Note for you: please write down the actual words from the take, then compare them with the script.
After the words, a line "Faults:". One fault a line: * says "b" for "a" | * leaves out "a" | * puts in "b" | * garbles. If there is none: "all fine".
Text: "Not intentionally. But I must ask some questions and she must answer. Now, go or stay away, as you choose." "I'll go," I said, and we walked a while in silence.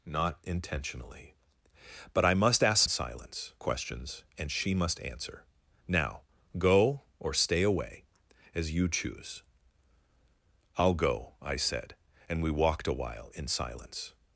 "Not intentionally. But I must ask silence questions and she must answer. Now, go or stay away, as you choose." "I'll go," I said, and we walked a while in silence.
Faults:
* says "silence" for "some"